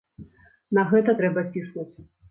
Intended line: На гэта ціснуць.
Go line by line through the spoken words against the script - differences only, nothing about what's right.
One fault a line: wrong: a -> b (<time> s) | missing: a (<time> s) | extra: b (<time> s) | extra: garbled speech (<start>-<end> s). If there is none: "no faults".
extra: трэба (1.2 s)